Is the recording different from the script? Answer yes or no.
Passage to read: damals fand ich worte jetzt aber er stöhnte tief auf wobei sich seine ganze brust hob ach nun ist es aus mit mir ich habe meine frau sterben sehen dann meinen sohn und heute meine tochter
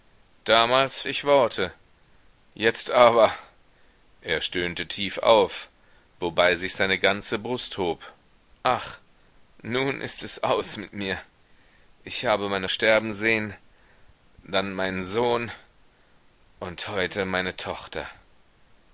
yes